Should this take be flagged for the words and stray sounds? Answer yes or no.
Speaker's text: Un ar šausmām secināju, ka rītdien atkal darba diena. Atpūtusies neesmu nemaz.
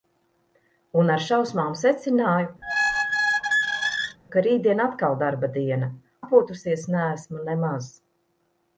yes